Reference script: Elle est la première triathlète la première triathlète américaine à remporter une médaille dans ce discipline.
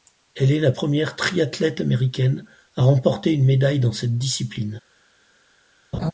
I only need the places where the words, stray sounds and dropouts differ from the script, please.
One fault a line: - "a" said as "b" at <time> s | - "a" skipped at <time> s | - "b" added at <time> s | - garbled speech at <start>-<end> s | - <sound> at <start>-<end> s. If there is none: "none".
- "la première triathlète" skipped at 1.8 s
- "ce" said as "cette" at 3.9 s
- laugh at 5.9-6.1 s